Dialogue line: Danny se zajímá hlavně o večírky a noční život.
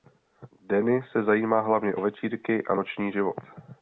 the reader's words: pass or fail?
pass